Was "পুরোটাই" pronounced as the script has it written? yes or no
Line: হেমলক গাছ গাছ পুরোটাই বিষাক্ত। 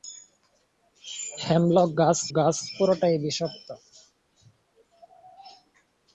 yes